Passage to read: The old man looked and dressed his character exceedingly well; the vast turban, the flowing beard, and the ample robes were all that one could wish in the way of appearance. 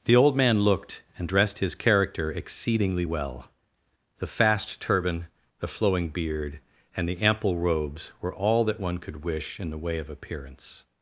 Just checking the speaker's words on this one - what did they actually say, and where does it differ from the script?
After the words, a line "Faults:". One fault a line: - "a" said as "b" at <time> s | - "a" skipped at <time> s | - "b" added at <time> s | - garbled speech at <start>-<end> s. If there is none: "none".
The old man looked and dressed his character exceedingly well; the fast turban, the flowing beard, and the ample robes were all that one could wish in the way of appearance.
Faults:
- "vast" said as "fast" at 4.3 s